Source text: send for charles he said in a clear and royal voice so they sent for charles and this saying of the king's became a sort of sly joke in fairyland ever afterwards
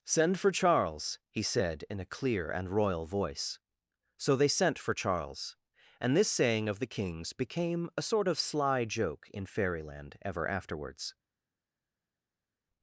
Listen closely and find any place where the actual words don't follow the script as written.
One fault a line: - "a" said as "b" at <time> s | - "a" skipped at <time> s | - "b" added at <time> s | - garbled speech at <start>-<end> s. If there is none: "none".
none